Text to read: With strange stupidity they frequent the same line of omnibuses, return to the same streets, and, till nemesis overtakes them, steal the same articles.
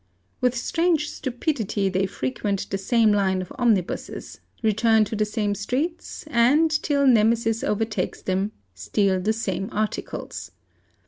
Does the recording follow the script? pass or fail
pass